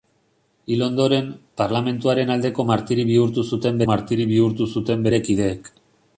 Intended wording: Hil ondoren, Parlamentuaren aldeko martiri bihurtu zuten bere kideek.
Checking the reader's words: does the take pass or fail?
fail